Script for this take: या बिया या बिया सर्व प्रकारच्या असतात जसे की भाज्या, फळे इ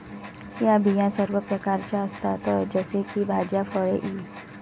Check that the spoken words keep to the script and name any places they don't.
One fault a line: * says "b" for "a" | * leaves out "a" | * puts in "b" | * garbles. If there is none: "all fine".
* leaves out "या बिया"